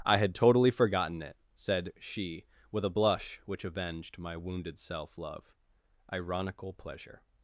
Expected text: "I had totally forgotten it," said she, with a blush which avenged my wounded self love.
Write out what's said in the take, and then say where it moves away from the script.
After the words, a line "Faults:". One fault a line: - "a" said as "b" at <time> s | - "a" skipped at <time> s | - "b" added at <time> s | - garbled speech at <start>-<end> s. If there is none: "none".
"I had totally forgotten it," said she, with a blush which avenged my wounded self love. Ironical pleasure
Faults:
- "Ironical pleasure" added at 6.1 s